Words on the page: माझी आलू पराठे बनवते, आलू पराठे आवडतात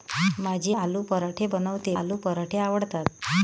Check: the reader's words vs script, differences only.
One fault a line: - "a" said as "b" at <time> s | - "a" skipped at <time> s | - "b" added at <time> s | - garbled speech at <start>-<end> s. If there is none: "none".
none